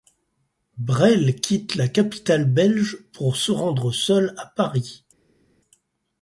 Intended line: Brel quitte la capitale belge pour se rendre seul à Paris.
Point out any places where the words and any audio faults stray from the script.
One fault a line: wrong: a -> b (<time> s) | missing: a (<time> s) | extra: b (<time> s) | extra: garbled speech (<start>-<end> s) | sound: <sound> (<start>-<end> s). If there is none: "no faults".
no faults